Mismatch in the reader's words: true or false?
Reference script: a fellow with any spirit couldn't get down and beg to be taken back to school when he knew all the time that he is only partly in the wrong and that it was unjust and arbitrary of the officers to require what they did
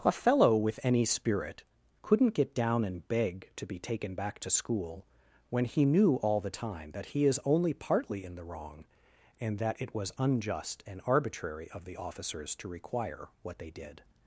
false